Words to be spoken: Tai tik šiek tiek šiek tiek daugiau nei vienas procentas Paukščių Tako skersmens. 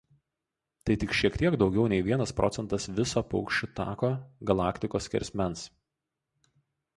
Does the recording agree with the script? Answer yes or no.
no